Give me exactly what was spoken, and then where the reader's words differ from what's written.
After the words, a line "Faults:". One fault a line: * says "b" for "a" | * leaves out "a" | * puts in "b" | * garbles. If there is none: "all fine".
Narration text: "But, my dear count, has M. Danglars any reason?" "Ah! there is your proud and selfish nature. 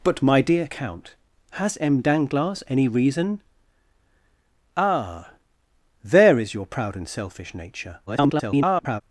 "But, my dear count, has M. Danglars any reason?" "Ah! there is your proud and selfish nature. [garbled]
Faults:
* garbles